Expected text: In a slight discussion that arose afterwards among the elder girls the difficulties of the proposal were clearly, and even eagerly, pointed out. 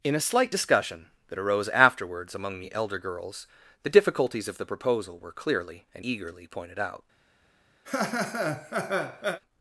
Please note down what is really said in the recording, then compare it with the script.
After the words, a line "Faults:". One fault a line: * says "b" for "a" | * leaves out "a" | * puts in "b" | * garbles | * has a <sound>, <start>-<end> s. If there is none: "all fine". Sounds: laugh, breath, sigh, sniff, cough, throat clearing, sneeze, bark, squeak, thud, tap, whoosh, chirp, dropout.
In a slight discussion that arose afterwards among the elder girls the difficulties of the proposal were clearly, and eagerly, pointed out.
Faults:
* leaves out "even"
* has a laugh, 7.9-9.4 s